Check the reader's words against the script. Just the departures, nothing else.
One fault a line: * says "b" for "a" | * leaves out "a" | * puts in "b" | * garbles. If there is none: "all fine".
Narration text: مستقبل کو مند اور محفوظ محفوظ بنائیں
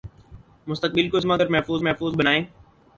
all fine